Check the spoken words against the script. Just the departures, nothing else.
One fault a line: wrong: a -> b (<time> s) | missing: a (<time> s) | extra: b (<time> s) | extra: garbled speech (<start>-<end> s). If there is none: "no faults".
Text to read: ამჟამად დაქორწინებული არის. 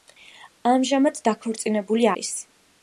no faults